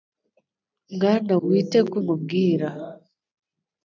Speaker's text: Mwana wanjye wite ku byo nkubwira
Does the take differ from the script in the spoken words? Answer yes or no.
yes